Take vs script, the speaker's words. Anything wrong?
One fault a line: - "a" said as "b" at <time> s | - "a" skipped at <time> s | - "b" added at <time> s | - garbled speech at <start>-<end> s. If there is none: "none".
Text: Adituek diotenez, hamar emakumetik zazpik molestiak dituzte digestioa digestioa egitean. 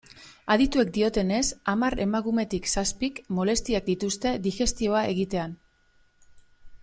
- "digestioa" skipped at 5.0 s